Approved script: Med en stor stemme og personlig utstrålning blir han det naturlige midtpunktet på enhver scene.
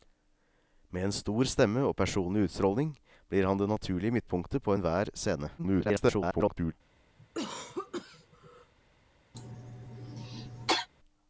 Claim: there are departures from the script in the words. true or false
true